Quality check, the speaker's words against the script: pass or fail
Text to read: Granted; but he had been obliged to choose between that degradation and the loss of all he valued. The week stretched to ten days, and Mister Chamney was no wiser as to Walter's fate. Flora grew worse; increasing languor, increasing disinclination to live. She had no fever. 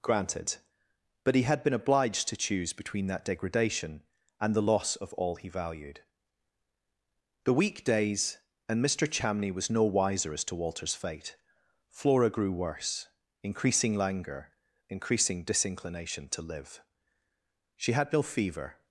fail